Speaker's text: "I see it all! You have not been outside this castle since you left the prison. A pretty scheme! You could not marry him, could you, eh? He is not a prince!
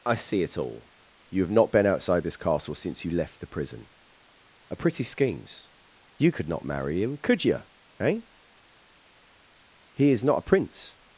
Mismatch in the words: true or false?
true